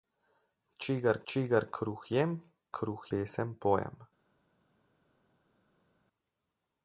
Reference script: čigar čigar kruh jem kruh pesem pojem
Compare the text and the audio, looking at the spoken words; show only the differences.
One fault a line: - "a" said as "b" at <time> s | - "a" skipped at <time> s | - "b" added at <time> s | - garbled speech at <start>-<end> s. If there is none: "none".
none